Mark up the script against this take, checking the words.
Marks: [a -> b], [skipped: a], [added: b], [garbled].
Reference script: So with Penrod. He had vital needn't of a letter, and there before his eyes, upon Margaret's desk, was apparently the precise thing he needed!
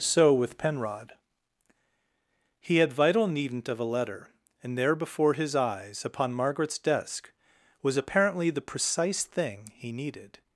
So with Penrod. He had vital needn't of a letter, and there before his eyes, upon Margaret's desk, was apparently the precise thing he needed!